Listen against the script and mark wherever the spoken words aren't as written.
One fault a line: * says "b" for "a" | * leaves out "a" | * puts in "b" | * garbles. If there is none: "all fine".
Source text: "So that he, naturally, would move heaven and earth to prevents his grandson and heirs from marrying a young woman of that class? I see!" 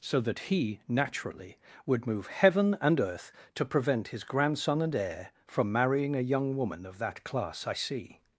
* says "prevent" for "prevents"
* says "heir" for "heirs"